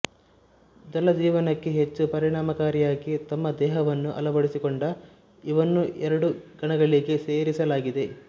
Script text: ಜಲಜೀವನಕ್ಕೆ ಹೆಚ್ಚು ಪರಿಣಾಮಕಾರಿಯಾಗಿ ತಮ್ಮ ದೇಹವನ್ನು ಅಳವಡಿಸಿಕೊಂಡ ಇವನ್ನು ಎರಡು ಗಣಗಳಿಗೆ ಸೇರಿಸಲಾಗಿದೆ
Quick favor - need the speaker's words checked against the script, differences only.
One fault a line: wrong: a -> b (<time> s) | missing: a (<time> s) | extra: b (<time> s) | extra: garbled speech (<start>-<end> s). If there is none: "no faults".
no faults